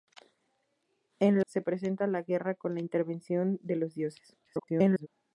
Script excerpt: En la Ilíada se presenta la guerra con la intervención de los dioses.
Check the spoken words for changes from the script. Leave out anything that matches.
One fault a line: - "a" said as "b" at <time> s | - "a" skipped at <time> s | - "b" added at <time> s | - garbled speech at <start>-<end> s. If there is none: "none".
- "la Ilíada" skipped at 1.4 s
- garbled speech at 4.4-5.1 s